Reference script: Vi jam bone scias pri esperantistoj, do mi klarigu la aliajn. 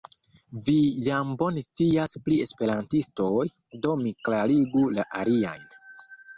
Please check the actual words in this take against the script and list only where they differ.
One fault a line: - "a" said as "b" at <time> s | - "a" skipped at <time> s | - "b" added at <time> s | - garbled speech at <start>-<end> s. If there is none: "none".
none